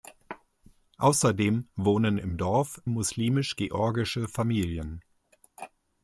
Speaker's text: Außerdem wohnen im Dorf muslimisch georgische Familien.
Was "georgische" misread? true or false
false